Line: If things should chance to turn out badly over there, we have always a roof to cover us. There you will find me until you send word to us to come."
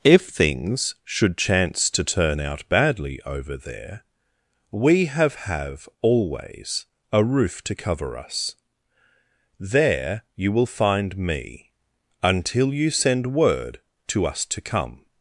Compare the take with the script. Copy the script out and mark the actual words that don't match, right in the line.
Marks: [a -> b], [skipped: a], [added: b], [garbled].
If things should chance to turn out badly over there, we have [added: have] always a roof to cover us. There you will find me until you send word to us to come."